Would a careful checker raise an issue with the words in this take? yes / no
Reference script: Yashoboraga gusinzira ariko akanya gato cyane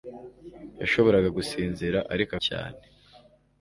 yes